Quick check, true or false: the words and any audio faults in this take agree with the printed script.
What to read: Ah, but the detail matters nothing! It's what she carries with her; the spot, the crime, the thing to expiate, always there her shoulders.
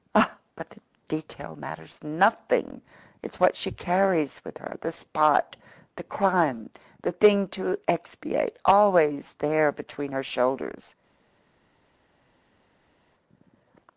false